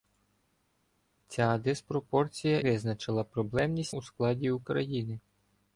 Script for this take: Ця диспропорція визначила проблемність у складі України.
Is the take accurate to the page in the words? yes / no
yes